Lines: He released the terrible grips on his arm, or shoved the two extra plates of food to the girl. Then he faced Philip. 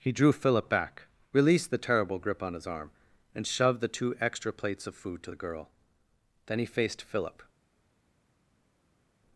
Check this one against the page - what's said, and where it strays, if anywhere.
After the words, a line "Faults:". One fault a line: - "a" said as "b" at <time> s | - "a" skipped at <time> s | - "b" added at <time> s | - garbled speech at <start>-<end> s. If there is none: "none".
He drew Philip back, released the terrible grip on his arm, and shoved the two extra plates of food to the girl. Then he faced Philip.
Faults:
- "drew Philip back" added at 0.1 s
- "grips" said as "grip" at 2.2 s
- "or" said as "and" at 3.4 s